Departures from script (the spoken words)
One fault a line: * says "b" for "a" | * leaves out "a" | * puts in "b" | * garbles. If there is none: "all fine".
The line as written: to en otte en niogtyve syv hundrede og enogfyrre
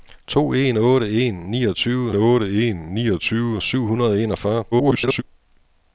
* puts in "otte en niogtyve"
* garbles